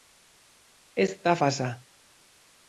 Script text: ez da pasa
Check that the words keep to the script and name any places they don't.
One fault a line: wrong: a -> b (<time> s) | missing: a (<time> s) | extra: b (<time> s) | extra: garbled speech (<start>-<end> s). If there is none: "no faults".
no faults